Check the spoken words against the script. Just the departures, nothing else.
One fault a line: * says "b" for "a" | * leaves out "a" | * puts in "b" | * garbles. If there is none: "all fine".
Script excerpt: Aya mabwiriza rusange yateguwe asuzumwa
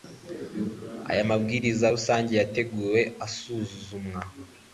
all fine